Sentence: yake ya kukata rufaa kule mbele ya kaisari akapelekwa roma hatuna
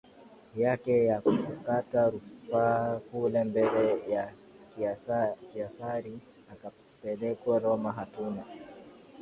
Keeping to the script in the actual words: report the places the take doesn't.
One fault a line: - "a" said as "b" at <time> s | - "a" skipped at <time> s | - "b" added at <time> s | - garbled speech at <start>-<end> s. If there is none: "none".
none